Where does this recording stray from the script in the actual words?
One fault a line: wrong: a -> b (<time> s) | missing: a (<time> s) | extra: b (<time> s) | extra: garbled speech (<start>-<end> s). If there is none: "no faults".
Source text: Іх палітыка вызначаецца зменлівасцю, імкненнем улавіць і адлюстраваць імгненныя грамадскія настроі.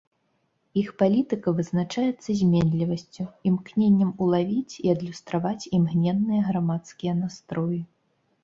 no faults